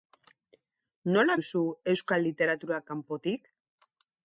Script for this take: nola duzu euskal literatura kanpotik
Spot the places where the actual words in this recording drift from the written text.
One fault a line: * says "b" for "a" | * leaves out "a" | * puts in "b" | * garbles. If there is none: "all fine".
all fine